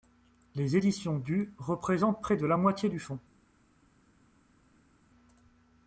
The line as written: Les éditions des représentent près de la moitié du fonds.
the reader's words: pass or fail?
fail